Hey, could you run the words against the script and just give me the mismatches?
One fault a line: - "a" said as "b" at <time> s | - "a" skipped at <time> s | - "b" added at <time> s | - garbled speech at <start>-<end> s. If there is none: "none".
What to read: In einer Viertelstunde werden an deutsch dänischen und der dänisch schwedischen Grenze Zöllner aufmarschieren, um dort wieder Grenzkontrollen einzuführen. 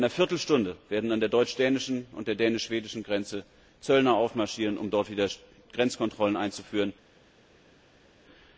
- "der" added at 1.2 s